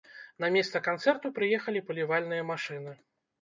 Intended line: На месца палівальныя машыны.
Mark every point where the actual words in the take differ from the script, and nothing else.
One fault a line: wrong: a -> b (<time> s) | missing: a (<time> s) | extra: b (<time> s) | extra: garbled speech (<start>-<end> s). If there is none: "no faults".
extra: канцэрту прыехалі (0.9 s)